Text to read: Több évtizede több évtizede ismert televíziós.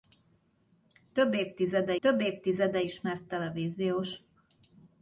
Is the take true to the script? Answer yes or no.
yes